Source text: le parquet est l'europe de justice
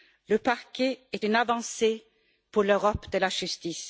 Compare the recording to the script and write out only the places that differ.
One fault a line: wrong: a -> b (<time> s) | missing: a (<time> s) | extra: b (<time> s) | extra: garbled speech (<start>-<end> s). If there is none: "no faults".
extra: une avancée pour (1.2 s)
extra: la (3.2 s)